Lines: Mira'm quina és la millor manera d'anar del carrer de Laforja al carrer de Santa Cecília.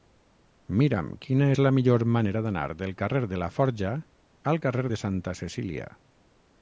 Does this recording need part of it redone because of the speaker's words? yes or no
no